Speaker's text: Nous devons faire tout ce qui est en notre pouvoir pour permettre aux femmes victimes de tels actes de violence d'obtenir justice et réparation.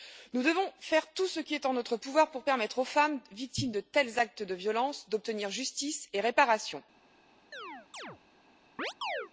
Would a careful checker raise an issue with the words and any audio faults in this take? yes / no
yes